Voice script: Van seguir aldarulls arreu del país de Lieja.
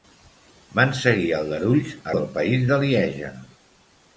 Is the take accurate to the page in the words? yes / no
no